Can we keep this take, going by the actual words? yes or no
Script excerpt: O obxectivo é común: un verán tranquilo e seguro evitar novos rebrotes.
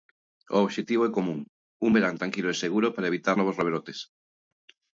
no